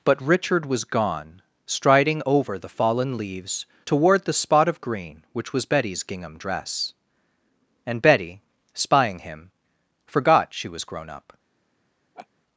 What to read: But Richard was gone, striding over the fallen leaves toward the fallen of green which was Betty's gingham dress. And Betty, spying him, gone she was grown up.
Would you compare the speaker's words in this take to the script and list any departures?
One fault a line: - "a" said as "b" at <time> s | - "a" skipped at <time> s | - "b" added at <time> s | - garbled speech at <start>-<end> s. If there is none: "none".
- "fallen" said as "spot" at 4.3 s
- "gone" said as "forgot" at 10.1 s